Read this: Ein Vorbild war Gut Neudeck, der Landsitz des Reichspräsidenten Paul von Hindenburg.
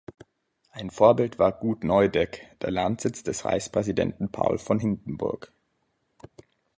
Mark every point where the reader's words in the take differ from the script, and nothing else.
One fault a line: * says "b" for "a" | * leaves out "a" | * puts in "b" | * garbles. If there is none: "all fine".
all fine